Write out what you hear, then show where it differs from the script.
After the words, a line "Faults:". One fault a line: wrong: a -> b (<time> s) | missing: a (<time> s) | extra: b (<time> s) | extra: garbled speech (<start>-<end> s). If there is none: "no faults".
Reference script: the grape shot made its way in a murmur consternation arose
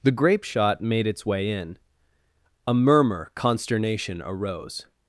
the grape shot made its way in a murmur consternation arose
Faults:
no faults